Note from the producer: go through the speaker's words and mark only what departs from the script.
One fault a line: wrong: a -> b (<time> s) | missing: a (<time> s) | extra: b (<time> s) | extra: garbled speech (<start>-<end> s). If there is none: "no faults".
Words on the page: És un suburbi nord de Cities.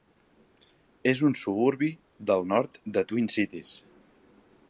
extra: del (2.3 s)
extra: Twin (3.1 s)